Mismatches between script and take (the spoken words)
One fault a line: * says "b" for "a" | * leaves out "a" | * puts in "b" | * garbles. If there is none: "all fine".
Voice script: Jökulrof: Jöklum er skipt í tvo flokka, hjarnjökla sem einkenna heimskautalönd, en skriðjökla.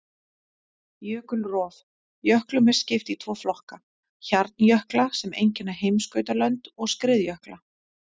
* says "og" for "en"